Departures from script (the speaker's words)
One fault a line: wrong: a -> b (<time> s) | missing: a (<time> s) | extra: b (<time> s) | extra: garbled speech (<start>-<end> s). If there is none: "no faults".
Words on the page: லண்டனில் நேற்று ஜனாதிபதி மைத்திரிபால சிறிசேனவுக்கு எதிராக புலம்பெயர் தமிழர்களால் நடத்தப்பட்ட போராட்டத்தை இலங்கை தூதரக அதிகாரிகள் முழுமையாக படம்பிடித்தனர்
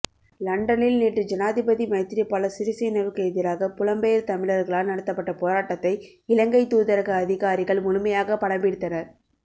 no faults